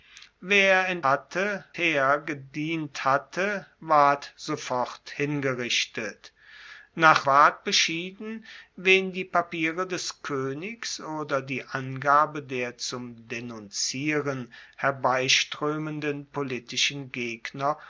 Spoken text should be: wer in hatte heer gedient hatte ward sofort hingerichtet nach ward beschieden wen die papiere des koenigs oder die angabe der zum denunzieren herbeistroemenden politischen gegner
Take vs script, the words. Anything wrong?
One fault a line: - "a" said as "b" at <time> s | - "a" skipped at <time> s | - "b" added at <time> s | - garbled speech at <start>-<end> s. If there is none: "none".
none